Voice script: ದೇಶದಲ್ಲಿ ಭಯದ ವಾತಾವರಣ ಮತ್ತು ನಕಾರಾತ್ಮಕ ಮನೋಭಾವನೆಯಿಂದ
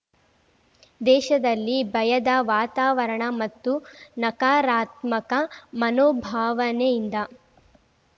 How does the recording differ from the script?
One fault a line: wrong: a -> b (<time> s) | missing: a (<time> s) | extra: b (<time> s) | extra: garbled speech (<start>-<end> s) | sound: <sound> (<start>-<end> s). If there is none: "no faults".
no faults